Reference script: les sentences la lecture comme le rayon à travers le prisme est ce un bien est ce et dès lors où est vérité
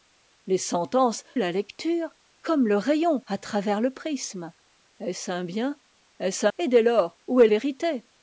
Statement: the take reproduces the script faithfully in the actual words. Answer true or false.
true